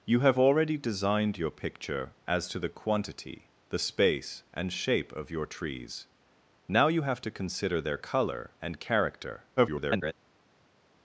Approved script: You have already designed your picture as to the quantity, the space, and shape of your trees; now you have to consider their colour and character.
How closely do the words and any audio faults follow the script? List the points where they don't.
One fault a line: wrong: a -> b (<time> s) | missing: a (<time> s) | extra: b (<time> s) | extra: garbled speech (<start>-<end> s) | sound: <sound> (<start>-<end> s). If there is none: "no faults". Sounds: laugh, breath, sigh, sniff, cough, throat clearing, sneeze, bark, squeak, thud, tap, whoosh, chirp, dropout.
extra: garbled speech (9.6-10.1 s)